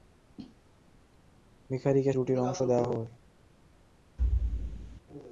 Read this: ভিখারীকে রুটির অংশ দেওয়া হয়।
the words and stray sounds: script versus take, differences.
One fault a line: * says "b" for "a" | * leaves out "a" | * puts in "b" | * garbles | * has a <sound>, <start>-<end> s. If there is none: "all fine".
* has a thud, 4.2-5.0 s